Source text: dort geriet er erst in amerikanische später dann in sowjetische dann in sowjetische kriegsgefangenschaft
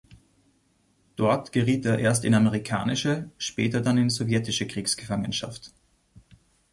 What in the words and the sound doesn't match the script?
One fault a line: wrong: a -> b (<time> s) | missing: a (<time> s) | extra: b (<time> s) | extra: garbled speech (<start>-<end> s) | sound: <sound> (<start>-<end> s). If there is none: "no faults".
missing: dann in sowjetische (4.6 s)